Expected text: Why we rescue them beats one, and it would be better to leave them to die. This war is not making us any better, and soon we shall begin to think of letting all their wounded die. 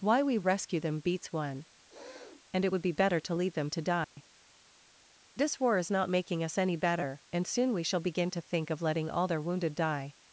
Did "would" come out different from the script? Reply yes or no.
no